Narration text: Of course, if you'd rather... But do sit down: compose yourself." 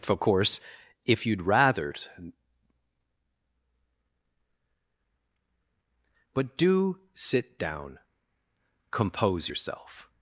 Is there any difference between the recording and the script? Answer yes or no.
no